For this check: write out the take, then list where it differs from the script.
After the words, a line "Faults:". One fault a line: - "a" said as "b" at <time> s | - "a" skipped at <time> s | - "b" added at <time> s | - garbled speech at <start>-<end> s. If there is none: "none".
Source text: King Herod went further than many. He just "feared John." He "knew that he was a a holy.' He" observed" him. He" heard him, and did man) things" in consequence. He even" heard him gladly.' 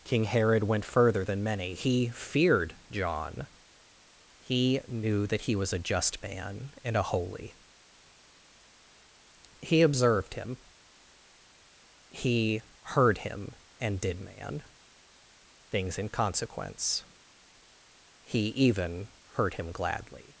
King Herod went further than many. He "feared John." He "knew that he was a just man and a holy.' He" observed" him. He" heard him, and did man) things" in consequence. He even" heard him gladly.'
Faults:
- "just" skipped at 2.1 s
- "just man and" added at 5.8 s